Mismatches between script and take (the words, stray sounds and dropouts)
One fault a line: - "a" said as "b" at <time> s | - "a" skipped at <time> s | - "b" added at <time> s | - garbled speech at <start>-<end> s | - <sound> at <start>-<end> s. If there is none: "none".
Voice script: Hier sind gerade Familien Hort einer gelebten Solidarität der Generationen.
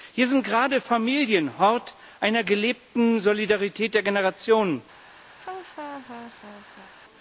- laugh at 5.4-6.9 s